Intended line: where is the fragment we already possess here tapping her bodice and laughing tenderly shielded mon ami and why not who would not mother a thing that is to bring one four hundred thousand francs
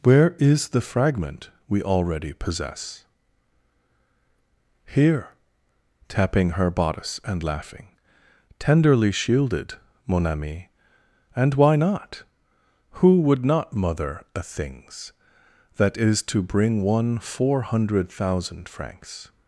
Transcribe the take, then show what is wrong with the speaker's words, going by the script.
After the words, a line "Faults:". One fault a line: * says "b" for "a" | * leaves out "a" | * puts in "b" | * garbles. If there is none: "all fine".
where is the fragment we already possess here tapping her bodice and laughing tenderly shielded mon ami and why not who would not mother a things that is to bring one four hundred thousand francs
Faults:
* says "things" for "thing"